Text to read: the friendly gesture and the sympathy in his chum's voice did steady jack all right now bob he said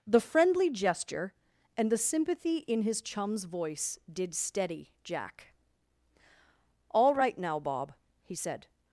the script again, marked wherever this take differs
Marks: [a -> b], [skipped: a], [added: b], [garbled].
the friendly gesture and the sympathy in his chum's voice did steady jack all right now bob he said